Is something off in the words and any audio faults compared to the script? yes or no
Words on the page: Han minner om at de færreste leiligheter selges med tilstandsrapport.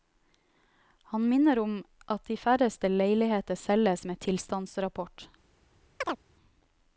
yes